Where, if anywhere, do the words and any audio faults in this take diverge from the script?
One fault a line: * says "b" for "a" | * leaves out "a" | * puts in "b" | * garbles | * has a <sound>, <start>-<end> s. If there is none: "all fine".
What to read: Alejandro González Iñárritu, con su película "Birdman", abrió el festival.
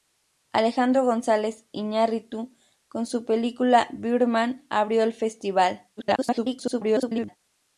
* garbles